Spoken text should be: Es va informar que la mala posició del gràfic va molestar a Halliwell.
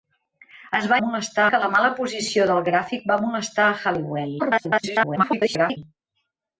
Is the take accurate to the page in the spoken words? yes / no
no